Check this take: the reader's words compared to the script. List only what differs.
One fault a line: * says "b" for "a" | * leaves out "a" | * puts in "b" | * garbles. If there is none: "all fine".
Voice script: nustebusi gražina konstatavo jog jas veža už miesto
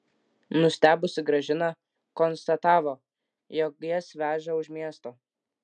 all fine